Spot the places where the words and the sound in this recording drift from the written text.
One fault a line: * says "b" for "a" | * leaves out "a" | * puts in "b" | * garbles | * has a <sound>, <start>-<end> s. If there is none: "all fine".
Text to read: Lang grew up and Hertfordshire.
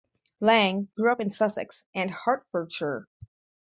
* puts in "in Sussex"